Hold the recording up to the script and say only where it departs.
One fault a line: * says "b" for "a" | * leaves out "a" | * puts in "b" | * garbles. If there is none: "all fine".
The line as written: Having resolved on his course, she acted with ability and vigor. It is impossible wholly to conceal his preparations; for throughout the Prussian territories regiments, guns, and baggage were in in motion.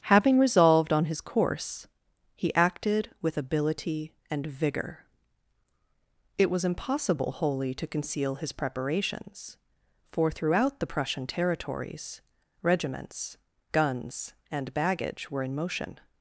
* says "he" for "she"
* says "was" for "is"
* leaves out "in"